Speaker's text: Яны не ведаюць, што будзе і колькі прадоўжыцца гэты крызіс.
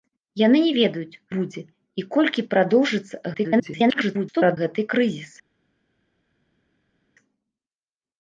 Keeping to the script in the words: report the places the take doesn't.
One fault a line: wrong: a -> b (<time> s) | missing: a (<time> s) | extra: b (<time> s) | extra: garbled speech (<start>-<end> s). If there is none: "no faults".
missing: што (1.2 s)
extra: garbled speech (3.3-4.6 s)